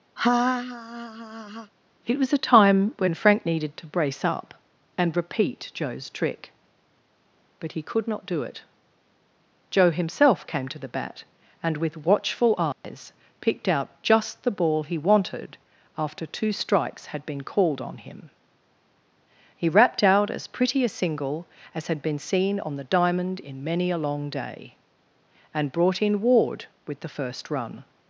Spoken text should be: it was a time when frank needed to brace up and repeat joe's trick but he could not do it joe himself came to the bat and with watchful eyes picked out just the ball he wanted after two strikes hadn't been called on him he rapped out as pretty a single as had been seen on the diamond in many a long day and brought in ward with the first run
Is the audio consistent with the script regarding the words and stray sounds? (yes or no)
no